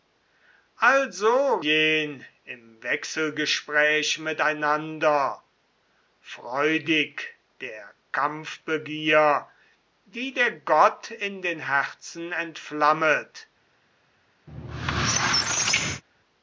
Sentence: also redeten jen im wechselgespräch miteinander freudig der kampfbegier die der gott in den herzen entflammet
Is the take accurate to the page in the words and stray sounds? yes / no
no